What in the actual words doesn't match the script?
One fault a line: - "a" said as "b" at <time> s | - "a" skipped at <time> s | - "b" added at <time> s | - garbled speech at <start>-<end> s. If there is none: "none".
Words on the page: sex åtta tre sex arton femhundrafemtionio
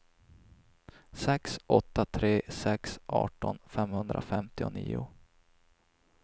none